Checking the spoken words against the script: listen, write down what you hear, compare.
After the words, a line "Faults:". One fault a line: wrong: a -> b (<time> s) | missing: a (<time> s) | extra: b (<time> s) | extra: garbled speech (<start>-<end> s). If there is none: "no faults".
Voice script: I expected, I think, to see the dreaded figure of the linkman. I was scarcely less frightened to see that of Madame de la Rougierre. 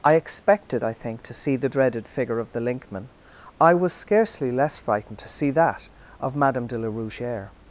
I expected, I think, to see the dreaded figure of the linkman. I was scarcely less frightened to see that of Madame de la Rougierre.
Faults:
no faults